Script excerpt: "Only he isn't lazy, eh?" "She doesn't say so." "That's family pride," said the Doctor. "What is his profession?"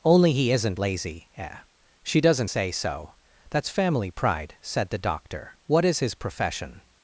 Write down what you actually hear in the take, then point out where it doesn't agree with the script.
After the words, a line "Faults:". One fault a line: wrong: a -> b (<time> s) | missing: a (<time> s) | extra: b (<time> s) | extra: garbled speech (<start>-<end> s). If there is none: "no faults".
"Only he isn't lazy, eh?" "She doesn't say so." "That's family pride," said the Doctor. "What is his profession?"
Faults:
no faults